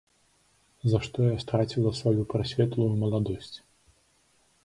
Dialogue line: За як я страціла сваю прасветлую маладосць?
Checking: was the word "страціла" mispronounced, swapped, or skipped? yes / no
no